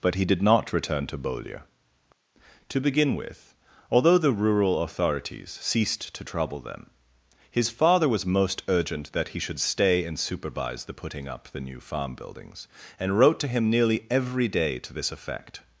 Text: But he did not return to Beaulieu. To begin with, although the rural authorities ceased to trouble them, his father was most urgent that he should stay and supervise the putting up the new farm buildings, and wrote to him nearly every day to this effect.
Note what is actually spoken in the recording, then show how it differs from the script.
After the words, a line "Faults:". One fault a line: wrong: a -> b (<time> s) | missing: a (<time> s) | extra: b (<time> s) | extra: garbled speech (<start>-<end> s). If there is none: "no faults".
But he did not return to Beaulieu. To begin with, although the rural authorities ceased to trouble them, his father was most urgent that he should stay and supervise the putting up the new farm buildings, and wrote to him nearly every day to this effect.
Faults:
no faults